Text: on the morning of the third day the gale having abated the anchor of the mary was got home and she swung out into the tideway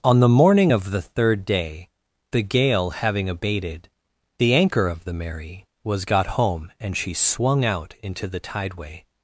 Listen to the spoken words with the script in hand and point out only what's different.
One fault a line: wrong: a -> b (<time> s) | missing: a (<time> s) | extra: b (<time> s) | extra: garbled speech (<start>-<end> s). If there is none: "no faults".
no faults